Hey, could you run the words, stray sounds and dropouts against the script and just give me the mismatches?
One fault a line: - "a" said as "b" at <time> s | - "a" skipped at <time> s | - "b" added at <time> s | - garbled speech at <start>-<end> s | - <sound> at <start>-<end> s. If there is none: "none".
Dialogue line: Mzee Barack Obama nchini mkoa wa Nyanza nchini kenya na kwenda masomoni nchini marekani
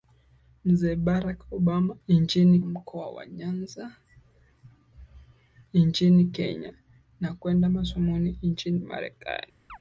- chirp at 9.7-9.8 s